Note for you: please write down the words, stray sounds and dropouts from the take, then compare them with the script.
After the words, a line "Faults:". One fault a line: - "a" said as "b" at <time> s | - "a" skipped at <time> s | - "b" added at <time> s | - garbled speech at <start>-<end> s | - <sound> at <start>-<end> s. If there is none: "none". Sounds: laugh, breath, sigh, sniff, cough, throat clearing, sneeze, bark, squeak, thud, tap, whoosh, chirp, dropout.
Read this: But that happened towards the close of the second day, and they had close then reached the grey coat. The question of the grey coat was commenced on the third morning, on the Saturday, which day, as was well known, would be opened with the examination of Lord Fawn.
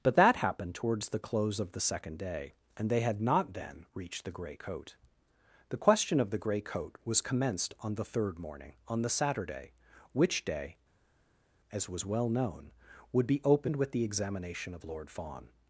But that happened towards the close of the second day, and they had not then reached the grey coat. The question of the grey coat was commenced on the third morning, on the Saturday, which day, as was well known, would be opened with the examination of Lord Fawn.
Faults:
- "close" said as "not" at 3.2 s